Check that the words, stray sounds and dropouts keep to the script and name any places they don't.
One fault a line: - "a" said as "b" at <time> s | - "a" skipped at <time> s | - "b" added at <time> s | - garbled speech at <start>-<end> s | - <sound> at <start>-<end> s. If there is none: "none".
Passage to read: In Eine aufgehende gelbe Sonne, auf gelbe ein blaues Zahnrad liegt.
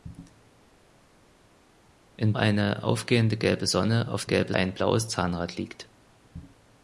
none